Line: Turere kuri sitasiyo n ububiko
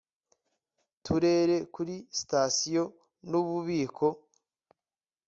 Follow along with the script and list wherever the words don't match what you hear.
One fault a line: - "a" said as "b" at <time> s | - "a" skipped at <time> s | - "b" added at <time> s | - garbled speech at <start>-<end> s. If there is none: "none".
none